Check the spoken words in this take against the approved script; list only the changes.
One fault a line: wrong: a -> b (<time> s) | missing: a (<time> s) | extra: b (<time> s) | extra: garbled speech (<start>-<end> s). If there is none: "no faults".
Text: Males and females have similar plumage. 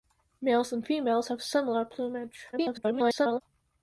extra: garbled speech (2.5-3.4 s)